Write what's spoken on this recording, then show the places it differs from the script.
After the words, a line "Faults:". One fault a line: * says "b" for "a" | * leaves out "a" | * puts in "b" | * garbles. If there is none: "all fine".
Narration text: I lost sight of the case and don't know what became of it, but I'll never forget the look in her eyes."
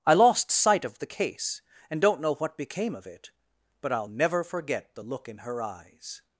I lost sight of the case and don't know what became of it, but I'll never forget the look in her eyes."
Faults:
all fine